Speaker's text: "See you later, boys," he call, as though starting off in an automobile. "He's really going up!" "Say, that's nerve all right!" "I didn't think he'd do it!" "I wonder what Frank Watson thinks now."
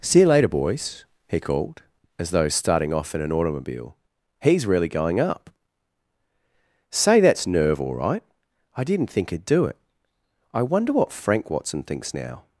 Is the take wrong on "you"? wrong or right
right